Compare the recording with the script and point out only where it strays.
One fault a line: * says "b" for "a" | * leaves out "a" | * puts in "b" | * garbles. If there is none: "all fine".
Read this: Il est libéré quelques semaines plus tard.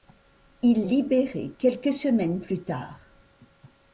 * leaves out "est"